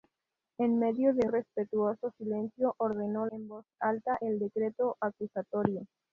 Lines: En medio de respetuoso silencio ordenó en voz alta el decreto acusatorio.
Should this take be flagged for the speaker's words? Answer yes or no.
no